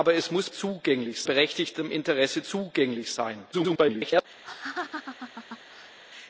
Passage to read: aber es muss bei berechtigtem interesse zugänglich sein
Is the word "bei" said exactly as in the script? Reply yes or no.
no